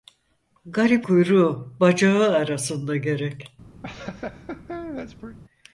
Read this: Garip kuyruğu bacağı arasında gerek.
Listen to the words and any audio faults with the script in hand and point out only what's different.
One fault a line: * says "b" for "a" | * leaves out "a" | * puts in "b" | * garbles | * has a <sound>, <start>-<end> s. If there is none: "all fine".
* has a laugh, 3.8-5.4 s